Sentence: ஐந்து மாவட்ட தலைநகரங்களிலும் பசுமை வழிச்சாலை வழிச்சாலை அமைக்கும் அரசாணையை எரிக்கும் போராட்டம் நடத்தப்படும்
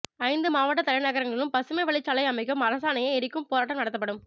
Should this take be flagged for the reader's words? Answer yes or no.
yes